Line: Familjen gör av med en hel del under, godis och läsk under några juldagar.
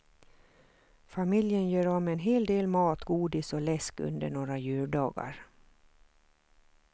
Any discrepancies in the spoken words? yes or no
yes